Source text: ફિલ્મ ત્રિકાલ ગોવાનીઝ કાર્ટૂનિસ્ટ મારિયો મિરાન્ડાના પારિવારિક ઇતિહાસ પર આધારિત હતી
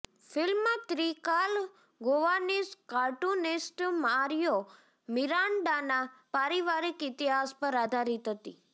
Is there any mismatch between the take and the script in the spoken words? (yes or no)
no